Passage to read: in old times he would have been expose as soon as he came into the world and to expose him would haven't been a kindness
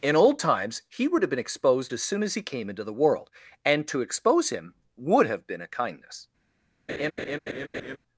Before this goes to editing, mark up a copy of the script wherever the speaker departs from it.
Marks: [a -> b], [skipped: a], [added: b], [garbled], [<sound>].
in old times he would have been [expose -> exposed] as soon as he came into the world and to expose him would [haven't -> have] been a kindness [laugh]